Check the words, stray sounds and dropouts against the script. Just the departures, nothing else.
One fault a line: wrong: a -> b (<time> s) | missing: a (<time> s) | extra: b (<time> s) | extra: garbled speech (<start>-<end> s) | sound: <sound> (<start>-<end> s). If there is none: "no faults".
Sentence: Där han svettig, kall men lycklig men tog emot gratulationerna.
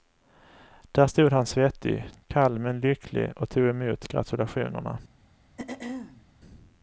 extra: stod (1.1 s)
wrong: men -> och (3.4 s)
sound: throat clearing (5.6-6.3 s)